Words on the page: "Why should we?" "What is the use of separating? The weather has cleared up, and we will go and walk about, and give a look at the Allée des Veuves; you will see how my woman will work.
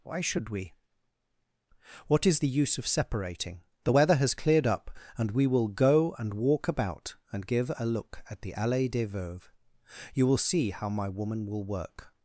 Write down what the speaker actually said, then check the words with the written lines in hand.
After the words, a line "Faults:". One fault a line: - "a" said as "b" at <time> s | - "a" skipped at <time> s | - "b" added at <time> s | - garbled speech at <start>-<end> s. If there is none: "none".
"Why should we?" "What is the use of separating? The weather has cleared up, and we will go and walk about, and give a look at the Allée des Veuves; you will see how my woman will work.
Faults:
none